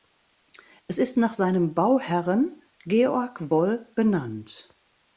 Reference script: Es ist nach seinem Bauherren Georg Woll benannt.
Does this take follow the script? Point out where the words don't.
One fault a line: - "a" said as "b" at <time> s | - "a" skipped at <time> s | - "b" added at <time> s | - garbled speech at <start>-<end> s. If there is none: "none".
none